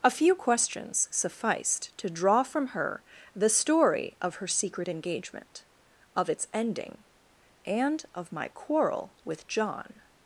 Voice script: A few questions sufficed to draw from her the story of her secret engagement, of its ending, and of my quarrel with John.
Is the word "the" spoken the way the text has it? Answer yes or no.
yes